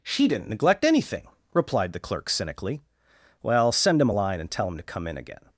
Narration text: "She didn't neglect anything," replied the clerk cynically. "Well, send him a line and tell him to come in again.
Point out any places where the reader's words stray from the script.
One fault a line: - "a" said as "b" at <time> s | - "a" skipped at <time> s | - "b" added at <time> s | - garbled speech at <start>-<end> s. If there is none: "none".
none